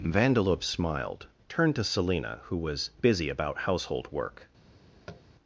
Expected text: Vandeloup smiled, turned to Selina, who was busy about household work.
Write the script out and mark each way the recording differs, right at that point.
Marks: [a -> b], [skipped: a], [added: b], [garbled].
Vandeloup smiled, turned to Selina, who was busy about household work.